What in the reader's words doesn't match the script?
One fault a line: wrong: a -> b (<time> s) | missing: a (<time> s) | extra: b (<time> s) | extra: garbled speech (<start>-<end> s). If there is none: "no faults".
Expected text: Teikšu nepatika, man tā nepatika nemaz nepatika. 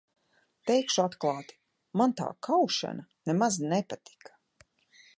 wrong: nepatika -> atklāti (1.0 s)
wrong: nepatika -> kaušana (2.5 s)